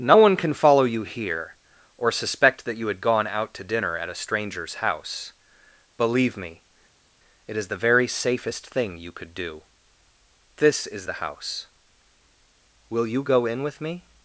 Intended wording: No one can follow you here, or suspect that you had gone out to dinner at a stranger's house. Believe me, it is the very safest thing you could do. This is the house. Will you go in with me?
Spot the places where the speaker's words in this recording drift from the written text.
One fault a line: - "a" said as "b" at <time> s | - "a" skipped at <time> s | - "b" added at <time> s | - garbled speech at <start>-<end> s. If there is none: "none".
none